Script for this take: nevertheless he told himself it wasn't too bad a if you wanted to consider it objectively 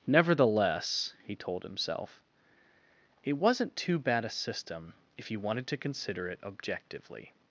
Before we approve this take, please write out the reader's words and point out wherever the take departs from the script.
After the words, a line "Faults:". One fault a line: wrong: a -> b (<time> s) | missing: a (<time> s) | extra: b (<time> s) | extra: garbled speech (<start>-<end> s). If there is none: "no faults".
nevertheless he told himself it wasn't too bad a system if you wanted to consider it objectively
Faults:
extra: system (4.3 s)